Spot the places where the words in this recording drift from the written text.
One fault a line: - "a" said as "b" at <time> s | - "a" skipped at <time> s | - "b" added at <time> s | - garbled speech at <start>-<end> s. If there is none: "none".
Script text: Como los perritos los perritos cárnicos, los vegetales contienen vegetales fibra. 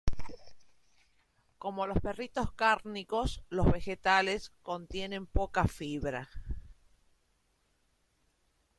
- "los perritos" skipped at 2.5 s
- "vegetales" said as "poca" at 5.3 s